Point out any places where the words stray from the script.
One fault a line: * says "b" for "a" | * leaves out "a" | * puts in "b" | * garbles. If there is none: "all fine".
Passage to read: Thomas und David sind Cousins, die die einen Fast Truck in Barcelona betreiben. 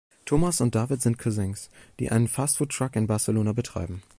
* leaves out "die"
* puts in "Food"